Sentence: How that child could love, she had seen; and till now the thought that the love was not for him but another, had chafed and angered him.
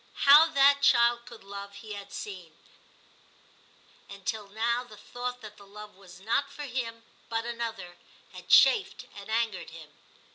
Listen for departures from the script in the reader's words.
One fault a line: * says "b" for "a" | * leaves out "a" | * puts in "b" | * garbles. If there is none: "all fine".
* says "he" for "she"